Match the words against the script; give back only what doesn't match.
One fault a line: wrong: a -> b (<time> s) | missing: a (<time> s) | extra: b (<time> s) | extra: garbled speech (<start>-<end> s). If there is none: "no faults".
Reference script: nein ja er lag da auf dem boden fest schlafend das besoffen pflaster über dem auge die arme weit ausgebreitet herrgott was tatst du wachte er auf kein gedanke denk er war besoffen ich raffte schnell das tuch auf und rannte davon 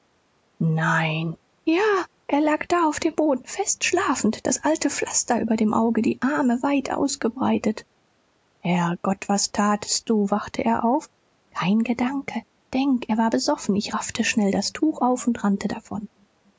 wrong: besoffen -> alte (4.6 s)